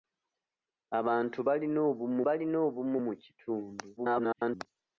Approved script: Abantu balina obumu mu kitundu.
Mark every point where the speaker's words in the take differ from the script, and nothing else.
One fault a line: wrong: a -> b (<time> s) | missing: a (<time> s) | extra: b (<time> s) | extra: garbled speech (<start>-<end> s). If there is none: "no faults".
extra: balina obumu (2.2 s)
extra: garbled speech (4.0-4.7 s)